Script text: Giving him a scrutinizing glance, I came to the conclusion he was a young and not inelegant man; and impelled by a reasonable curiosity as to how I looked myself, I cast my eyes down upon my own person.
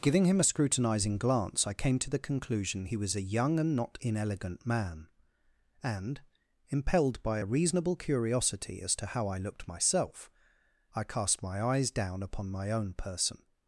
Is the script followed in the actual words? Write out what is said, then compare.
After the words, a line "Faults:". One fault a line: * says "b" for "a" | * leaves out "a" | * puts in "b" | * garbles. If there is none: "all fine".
Giving him a scrutinizing glance, I came to the conclusion he was a young and not inelegant man; and impelled by a reasonable curiosity as to how I looked myself, I cast my eyes down upon my own person.
Faults:
all fine